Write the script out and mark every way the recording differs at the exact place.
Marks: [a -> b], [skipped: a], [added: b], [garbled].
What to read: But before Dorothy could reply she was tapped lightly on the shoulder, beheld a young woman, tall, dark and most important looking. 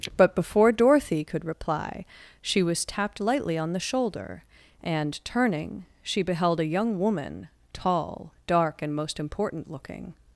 But before Dorothy could reply she was tapped lightly on the shoulder, [added: and turning she] beheld a young woman, tall, dark and most important looking.